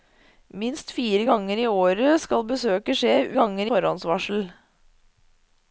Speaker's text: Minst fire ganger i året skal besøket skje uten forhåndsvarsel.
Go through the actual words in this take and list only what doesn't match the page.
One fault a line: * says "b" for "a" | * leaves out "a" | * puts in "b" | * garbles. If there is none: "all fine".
* says "ganger" for "uten"